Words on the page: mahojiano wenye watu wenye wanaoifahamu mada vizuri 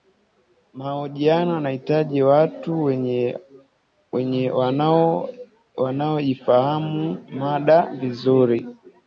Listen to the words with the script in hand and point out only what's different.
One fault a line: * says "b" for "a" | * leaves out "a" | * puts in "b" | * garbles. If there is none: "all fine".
* says "yanahitaji" for "wenye"